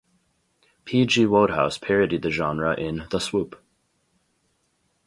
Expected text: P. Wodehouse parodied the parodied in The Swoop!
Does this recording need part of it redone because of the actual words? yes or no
yes